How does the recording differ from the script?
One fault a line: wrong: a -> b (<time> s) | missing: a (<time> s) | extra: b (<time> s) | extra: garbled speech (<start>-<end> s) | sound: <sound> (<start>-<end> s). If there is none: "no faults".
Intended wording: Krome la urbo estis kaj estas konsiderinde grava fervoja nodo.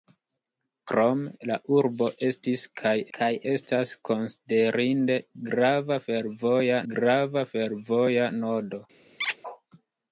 extra: kaj (3.2 s)
extra: grava fervoja (6.9 s)
sound: squeak (9.2-9.4 s)